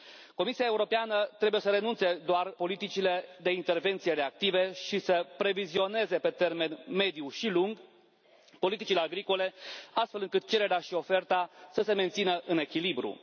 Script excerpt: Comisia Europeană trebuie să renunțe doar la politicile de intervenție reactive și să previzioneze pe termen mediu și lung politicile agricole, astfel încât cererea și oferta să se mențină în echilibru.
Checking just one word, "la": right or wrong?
wrong